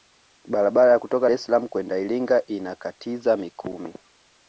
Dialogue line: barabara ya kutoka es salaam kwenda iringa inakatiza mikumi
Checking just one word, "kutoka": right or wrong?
right